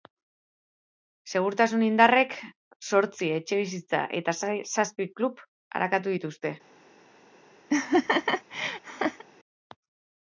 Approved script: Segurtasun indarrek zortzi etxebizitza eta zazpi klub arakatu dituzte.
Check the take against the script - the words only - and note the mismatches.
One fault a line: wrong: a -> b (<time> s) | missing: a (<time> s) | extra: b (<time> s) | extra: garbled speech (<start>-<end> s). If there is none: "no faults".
no faults